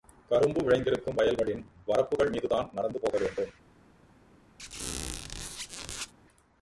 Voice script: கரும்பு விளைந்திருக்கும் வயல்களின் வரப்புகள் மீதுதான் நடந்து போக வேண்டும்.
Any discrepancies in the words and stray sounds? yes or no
yes